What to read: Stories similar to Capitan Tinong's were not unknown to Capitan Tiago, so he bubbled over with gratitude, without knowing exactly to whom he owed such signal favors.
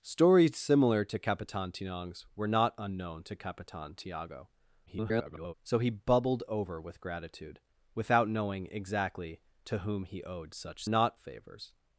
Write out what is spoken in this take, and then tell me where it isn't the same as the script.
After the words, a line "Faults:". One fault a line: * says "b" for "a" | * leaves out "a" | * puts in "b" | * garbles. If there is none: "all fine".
Stories similar to Capitan Tinong's were not unknown to Capitan Tiago, [garbled] so he bubbled over with gratitude, without knowing exactly to whom he owed such not favors.
Faults:
* garbles
* says "not" for "signal"